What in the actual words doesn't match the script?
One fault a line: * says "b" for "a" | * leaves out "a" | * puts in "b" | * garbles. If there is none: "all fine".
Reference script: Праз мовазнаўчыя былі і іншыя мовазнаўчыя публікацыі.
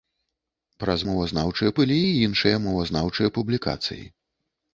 all fine